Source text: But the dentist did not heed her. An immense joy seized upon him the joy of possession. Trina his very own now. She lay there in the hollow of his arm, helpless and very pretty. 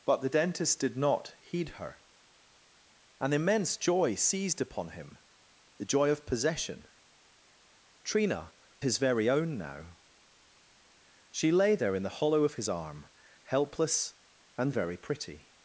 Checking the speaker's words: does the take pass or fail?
pass